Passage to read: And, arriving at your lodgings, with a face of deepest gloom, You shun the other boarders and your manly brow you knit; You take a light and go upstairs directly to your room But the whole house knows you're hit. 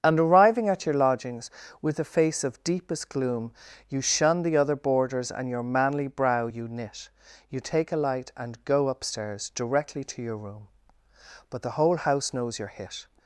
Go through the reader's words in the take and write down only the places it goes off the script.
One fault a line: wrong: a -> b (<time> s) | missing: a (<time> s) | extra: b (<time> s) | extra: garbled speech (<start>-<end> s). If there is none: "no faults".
no faults